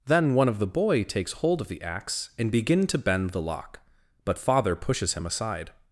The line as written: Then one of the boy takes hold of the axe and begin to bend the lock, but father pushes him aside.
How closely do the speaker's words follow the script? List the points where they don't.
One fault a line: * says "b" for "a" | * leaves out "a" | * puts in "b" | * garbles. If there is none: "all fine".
all fine